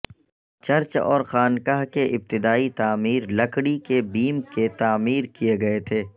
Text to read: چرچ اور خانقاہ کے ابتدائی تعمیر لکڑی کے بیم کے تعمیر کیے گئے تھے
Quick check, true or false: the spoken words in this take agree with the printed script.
true